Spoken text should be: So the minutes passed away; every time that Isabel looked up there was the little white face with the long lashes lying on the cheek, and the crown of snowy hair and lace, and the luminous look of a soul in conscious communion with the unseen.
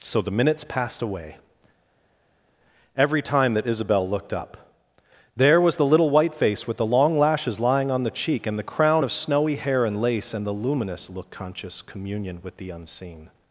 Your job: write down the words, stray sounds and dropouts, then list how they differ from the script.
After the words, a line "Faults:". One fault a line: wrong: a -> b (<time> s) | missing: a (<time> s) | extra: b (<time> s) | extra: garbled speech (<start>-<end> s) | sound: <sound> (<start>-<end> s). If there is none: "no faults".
So the minutes passed away; every time that Isabel looked up there was the little white face with the long lashes lying on the cheek, and the crown of snowy hair and lace, and the luminous look conscious communion with the unseen.
Faults:
missing: of a soul in (11.3 s)